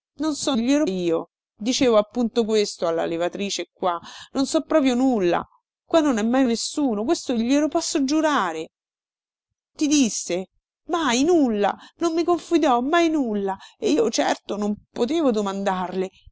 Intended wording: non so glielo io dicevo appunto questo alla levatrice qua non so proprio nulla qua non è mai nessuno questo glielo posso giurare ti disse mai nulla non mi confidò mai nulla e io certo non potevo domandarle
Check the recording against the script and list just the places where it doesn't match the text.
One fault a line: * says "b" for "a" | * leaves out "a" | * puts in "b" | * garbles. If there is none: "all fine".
all fine